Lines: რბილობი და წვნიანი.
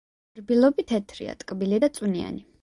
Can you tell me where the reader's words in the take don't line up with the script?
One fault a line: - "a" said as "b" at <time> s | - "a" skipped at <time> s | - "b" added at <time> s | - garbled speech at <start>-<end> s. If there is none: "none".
- "თეთრია ტკბილი" added at 0.9 s